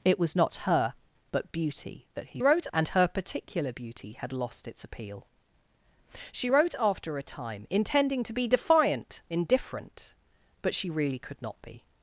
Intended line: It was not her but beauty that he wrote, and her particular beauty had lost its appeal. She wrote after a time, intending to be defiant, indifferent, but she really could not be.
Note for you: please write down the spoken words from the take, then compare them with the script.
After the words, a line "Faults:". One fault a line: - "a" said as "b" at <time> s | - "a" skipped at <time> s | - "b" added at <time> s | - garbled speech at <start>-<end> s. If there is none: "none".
It was not her but beauty that he wrote, and her particular beauty had lost its appeal. She wrote after a time, intending to be defiant, indifferent, but she really could not be.
Faults:
none